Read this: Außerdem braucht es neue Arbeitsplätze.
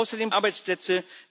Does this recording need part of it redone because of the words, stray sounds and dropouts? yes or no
yes